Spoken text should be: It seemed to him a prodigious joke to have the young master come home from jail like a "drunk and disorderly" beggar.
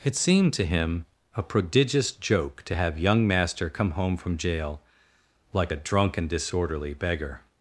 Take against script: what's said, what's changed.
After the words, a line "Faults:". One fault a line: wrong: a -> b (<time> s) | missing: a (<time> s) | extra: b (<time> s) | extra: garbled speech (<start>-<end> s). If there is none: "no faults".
It seemed to him a prodigious joke to have young master come home from jail like a "drunk and disorderly" beggar.
Faults:
missing: the (3.0 s)